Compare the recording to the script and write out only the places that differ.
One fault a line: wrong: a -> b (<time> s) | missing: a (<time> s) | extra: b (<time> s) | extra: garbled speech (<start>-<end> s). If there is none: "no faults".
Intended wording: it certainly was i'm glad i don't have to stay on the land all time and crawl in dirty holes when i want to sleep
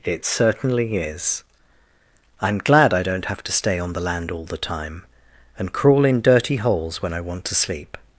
wrong: was -> is (1.0 s)
extra: the (4.5 s)